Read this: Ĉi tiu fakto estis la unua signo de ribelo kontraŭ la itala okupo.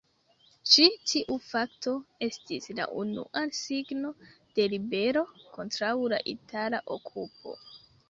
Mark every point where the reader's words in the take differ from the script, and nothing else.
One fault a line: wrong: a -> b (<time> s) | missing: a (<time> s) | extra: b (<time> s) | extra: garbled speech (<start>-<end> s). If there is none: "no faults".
no faults